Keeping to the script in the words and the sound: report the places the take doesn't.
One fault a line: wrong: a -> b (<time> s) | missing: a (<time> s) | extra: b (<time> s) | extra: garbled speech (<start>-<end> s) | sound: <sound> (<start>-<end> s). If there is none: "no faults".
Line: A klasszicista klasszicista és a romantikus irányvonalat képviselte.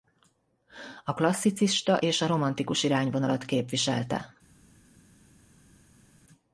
missing: klasszicista (2.0 s)